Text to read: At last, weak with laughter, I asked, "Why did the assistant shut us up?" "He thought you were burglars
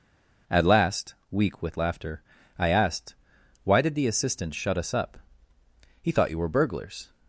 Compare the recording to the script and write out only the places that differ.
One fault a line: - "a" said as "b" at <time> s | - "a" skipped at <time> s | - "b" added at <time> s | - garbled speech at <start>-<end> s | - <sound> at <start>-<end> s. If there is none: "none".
none